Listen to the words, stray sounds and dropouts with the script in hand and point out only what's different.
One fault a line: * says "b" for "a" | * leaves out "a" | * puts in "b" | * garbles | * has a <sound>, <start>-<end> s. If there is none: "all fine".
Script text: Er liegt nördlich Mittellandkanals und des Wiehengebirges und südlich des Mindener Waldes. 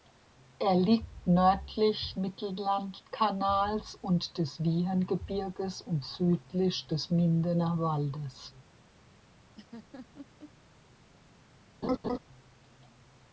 * has a laugh, 9.6-10.5 s
* has a laugh, 11.8-12.2 s